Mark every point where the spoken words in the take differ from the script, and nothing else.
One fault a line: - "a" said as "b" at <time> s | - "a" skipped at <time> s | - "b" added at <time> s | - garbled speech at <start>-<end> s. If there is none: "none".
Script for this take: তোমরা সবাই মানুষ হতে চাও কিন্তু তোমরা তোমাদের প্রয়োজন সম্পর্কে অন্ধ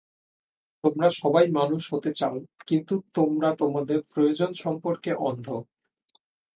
none